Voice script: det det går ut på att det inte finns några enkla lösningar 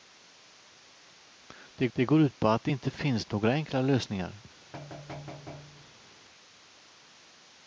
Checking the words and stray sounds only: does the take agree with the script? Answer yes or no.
no